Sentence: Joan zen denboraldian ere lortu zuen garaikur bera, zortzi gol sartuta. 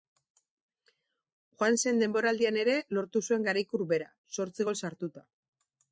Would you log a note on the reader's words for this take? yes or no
no